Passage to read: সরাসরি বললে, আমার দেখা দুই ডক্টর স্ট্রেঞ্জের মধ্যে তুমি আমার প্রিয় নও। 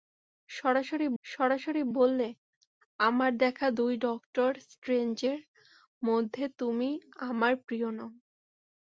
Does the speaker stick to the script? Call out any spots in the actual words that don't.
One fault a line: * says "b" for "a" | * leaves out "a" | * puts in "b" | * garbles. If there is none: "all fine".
* puts in "সরাসরি"